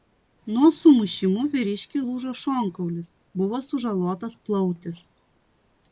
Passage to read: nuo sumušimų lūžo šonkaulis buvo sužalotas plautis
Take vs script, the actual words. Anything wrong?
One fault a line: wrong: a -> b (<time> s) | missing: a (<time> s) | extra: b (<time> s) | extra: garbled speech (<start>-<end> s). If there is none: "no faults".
extra: vyriškiui (1.5 s)